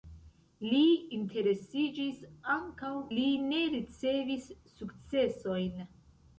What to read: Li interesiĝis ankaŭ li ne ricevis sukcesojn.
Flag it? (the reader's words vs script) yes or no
no